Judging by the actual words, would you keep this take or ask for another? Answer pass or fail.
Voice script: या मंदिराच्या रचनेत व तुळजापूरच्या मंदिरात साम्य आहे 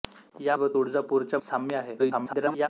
fail